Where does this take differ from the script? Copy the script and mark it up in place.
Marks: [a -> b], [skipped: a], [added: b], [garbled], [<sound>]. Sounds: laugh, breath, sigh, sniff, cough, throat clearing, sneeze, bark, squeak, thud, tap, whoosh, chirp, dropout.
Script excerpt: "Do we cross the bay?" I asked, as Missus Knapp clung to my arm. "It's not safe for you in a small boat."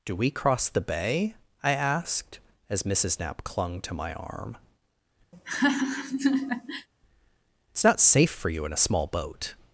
"Do we cross the bay?" I asked, as Missus Knapp clung to my arm. [laugh] "It's not safe for you in a small boat."